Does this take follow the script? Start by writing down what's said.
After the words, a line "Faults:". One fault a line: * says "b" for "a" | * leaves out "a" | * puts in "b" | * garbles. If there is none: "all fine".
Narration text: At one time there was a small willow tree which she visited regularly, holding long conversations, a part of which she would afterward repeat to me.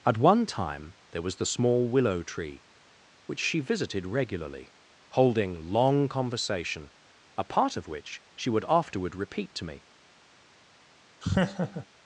At one time there was the small willow tree which she visited regularly, holding long conversation, a part of which she would afterward repeat to me.
Faults:
* says "the" for "a"
* says "conversation" for "conversations"